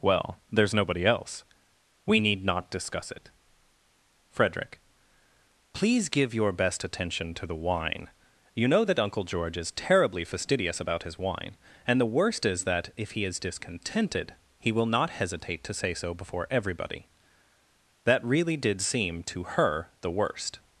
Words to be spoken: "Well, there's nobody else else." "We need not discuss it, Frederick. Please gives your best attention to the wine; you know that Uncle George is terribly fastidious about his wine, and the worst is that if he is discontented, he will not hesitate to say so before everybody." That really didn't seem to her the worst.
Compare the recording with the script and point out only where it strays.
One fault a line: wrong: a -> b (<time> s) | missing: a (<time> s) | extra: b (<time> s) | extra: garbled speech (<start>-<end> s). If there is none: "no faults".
missing: else (1.4 s)
wrong: gives -> give (6.1 s)
wrong: didn't -> did (18.6 s)